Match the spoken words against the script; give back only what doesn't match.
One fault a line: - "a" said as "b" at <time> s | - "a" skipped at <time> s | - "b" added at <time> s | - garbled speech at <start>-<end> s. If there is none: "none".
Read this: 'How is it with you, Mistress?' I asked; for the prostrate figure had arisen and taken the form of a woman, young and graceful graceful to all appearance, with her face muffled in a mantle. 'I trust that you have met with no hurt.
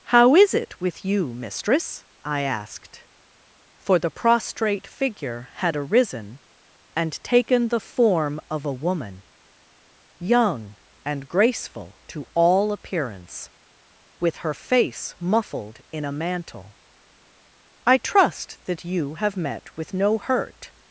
- "graceful" skipped at 12.0 s